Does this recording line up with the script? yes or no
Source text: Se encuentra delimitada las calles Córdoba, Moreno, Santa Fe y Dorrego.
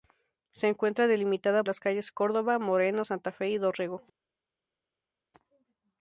yes